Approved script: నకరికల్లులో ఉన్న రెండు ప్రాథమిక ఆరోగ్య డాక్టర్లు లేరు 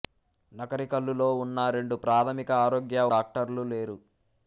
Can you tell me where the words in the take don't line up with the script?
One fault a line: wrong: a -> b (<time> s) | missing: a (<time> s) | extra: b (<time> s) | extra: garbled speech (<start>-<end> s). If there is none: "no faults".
no faults